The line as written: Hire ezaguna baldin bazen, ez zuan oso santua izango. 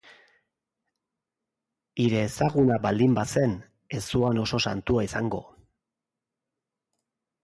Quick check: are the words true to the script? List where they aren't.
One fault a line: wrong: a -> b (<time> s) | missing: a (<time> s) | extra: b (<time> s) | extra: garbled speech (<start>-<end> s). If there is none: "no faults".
no faults